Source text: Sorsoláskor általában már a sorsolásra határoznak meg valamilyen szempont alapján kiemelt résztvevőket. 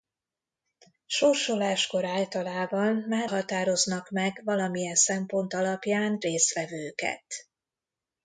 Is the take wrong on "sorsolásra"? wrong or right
wrong